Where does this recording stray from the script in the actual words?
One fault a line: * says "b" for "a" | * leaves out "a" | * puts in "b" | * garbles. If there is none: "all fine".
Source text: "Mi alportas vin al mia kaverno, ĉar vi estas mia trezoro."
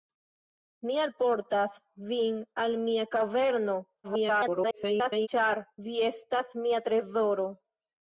* garbles